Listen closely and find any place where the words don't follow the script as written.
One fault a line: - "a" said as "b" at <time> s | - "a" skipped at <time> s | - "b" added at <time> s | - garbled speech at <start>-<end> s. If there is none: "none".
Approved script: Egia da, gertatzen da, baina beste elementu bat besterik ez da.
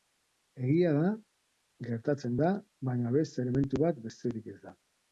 none